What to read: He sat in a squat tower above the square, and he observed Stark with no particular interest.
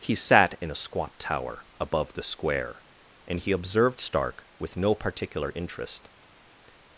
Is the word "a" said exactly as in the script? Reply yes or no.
yes